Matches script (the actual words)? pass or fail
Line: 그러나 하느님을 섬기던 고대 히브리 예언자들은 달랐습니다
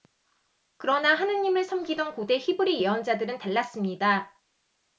pass